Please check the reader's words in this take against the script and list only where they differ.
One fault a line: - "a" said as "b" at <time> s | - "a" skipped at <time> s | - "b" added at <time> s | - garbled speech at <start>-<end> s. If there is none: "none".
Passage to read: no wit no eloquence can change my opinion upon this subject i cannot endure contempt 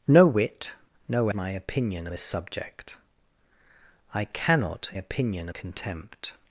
- "eloquence can change" skipped at 1.3 s
- "upon" skipped at 2.1 s
- "endure" said as "opinion" at 4.9 s